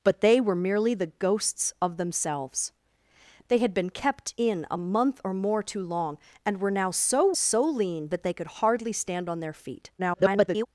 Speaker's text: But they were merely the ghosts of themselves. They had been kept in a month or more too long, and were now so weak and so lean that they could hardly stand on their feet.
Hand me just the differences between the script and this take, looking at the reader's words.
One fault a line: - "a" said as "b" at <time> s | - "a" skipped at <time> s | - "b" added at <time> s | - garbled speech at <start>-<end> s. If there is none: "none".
- "weak and" skipped at 7.3 s
- garbled speech at 10.0-10.7 s